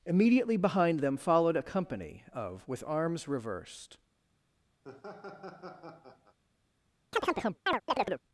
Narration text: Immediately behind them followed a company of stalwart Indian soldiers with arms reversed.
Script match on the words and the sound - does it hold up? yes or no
no